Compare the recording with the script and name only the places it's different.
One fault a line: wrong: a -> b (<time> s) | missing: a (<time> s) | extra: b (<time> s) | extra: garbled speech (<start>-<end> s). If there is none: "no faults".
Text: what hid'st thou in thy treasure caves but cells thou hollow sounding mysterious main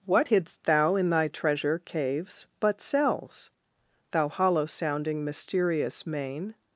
no faults